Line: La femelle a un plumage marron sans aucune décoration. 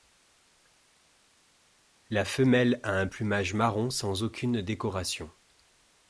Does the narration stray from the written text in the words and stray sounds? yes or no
no